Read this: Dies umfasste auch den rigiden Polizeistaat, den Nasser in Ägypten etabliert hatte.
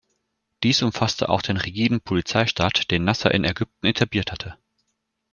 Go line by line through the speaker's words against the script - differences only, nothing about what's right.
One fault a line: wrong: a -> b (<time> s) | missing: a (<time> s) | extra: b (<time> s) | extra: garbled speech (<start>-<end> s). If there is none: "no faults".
no faults